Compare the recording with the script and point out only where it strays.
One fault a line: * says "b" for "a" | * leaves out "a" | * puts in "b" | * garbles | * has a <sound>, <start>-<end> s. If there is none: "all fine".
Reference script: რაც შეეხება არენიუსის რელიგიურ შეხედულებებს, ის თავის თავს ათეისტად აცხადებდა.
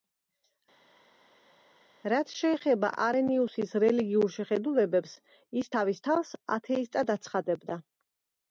all fine